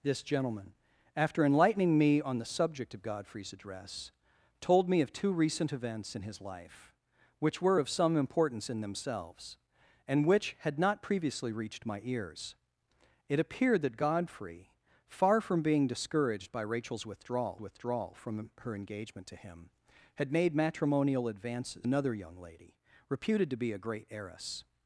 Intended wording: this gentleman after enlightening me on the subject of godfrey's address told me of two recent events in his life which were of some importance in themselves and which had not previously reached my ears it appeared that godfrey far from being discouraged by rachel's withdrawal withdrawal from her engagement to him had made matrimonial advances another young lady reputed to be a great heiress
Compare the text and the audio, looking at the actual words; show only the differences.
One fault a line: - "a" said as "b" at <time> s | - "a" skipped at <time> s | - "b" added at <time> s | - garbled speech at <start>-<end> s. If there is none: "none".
none